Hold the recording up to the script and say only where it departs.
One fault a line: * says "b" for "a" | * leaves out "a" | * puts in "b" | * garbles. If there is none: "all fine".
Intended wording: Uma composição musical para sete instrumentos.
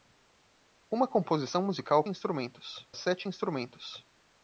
* says "instrumentos" for "para"